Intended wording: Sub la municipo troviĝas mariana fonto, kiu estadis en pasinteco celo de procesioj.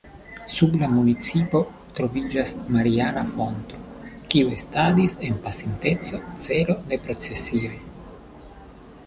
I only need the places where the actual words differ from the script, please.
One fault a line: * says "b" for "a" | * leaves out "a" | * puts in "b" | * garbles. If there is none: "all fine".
all fine